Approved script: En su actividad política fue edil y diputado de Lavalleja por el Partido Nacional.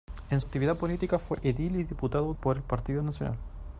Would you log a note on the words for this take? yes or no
yes